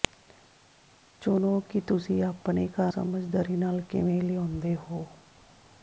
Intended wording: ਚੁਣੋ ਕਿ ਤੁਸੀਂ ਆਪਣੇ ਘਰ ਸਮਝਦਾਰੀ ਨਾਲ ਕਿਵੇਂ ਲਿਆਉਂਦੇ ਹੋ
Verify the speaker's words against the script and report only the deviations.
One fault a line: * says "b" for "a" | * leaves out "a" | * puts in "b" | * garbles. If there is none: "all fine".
all fine